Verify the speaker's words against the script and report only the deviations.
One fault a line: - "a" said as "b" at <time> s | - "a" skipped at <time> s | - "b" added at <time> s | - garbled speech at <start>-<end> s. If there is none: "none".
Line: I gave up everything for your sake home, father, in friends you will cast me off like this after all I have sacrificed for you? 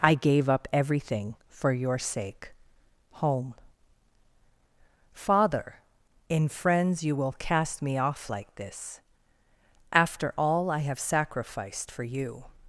none